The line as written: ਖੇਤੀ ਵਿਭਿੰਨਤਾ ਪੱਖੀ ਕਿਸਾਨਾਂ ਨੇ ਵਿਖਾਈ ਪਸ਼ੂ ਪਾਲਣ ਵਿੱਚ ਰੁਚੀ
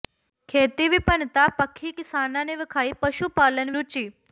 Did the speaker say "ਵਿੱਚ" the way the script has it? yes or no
no